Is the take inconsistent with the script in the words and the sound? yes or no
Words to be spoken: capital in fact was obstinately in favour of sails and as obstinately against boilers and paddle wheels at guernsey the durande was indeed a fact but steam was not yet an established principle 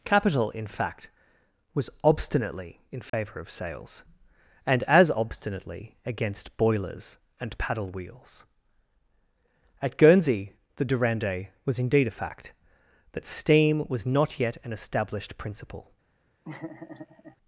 yes